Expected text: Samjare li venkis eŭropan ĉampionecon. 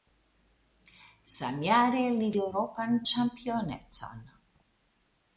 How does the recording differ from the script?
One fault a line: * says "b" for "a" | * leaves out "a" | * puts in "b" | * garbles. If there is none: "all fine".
* leaves out "venkis"